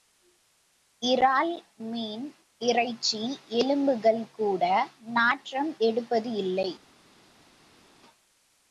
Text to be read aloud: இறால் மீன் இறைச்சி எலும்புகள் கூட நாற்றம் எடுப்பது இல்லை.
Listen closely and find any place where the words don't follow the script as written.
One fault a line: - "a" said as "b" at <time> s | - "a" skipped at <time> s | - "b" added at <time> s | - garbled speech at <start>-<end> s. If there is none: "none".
none